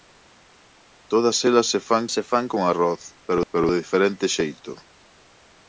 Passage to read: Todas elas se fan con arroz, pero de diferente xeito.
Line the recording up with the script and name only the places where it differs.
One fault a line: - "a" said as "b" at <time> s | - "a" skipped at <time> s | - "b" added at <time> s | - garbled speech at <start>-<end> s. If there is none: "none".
- "se fan" added at 2.1 s
- "pero" added at 3.5 s